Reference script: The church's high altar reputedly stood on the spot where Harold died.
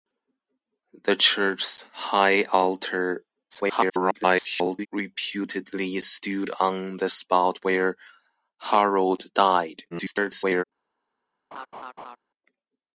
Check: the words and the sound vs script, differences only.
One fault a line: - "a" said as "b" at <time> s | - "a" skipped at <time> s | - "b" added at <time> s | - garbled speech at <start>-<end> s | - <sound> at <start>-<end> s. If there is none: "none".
- garbled speech at 3.5-4.9 s
- garbled speech at 9.9-10.6 s
- laugh at 11.5-12.2 s